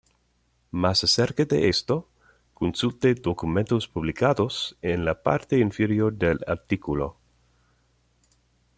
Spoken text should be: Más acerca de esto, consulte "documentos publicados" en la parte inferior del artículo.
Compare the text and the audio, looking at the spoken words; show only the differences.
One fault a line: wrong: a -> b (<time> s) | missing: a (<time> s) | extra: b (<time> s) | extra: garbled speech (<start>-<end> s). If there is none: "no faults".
no faults